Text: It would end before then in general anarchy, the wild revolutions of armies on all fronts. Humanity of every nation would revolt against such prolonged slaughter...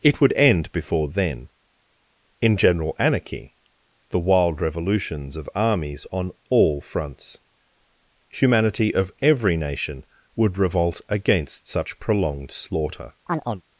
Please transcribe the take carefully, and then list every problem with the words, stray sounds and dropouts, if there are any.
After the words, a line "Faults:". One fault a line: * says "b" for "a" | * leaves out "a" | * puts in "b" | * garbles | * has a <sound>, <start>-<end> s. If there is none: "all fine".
It would end before then in general anarchy, the wild revolutions of armies on all fronts. Humanity of every nation would revolt against such prolonged slaughter...
Faults:
* has a chirp, 13.3-13.6 s